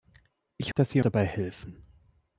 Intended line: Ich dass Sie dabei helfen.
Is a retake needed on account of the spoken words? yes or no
no